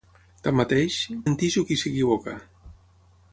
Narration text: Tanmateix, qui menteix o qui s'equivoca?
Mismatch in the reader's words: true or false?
true